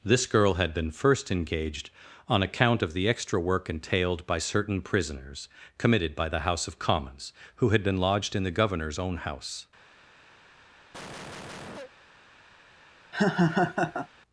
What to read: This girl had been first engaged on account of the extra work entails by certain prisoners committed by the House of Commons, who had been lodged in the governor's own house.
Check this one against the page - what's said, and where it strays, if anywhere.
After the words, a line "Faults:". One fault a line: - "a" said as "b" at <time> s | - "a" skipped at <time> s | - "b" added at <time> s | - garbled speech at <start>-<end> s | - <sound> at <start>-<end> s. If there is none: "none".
This girl had been first engaged on account of the extra work entailed by certain prisoners committed by the House of Commons, who had been lodged in the governor's own house.
Faults:
- "entails" said as "entailed" at 3.7 s
- cough at 10.9-11.9 s
- laugh at 13.1-14.1 s